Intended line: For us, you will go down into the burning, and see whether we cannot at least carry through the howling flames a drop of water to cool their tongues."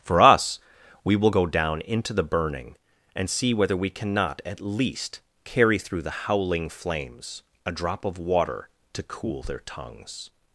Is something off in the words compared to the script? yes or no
yes